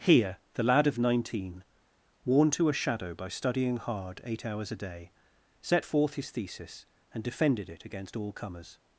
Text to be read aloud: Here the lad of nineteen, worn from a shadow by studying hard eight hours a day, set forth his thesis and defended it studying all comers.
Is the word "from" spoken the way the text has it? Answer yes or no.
no